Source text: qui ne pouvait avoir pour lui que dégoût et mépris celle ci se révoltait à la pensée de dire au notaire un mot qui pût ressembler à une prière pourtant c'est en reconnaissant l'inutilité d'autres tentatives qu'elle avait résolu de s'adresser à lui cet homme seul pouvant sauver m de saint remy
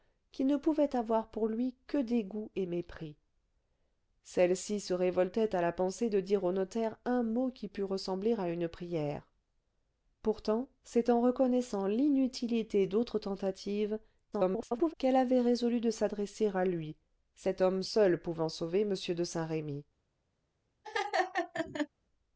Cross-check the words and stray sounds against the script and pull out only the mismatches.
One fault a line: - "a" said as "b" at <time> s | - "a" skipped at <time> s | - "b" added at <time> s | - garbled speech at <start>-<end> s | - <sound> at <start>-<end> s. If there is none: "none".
- garbled speech at 14.3-14.9 s
- laugh at 20.8-21.9 s